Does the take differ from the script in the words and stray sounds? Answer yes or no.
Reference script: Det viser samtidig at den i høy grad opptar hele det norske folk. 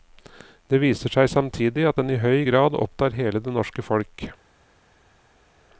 yes